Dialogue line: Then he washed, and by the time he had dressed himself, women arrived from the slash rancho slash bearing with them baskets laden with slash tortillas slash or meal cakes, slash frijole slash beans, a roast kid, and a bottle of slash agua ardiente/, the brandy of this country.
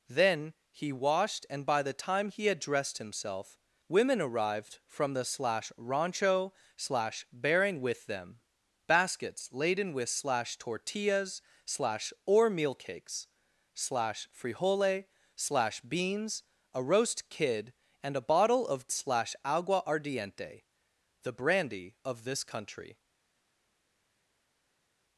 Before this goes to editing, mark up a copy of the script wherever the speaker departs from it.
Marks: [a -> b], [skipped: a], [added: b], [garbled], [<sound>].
Then he washed, and by the time he had dressed himself, women arrived from the slash rancho slash bearing with them baskets laden with slash tortillas slash or meal cakes, slash frijole slash beans, a roast kid, and a bottle of slash agua ardiente/, the brandy of this country.